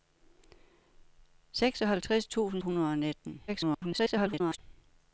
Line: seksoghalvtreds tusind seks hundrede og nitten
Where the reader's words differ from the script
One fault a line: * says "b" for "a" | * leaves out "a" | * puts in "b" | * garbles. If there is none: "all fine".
* leaves out "seks"
* garbles